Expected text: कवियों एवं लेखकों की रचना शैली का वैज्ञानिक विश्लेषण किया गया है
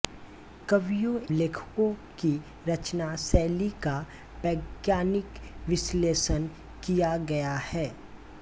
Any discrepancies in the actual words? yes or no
yes